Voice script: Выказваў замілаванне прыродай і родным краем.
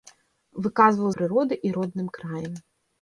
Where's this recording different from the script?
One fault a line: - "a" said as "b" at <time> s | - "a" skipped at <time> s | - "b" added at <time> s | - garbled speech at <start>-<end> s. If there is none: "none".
- "замілаванне" skipped at 1.1 s